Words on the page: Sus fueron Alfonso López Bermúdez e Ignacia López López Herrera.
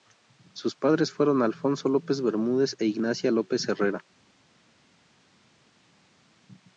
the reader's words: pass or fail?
fail